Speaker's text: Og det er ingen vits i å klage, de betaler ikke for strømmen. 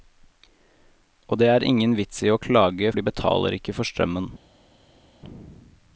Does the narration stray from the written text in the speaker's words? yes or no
no